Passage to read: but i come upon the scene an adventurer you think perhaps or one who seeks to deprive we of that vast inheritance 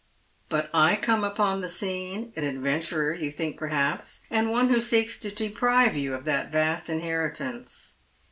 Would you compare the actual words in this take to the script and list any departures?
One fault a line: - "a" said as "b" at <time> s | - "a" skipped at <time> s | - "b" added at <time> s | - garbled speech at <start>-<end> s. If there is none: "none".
- "or" said as "and" at 4.3 s
- "we" said as "you" at 6.0 s